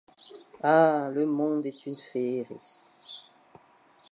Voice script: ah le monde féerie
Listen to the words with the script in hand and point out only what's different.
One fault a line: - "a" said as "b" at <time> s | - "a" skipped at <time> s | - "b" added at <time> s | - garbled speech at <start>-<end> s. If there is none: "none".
- "est une" added at 1.6 s